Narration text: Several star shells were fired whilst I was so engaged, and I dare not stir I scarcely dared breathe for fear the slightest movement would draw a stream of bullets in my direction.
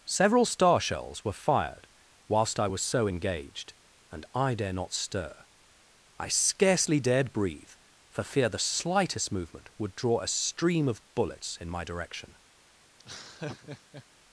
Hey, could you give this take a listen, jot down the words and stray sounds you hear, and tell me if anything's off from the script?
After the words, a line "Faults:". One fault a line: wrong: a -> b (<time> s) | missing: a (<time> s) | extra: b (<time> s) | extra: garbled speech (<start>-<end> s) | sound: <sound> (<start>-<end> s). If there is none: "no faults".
Several star shells were fired whilst I was so engaged, and I dare not stir I scarcely dared breathe for fear the slightest movement would draw a stream of bullets in my direction.
Faults:
sound: laugh (13.0-14.1 s)